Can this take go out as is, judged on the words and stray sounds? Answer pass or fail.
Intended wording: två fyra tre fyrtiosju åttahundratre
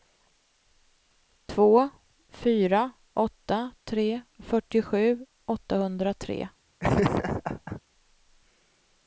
fail